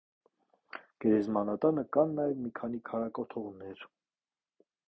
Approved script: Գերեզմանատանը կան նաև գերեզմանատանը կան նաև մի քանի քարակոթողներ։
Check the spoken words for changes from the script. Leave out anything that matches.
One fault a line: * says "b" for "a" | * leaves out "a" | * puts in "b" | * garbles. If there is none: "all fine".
* leaves out "գերեզմանատանը կան նաև"